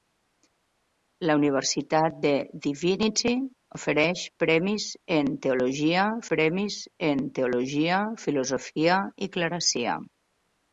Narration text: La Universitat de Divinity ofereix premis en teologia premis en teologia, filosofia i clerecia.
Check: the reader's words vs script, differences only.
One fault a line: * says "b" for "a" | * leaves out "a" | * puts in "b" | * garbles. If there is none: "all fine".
all fine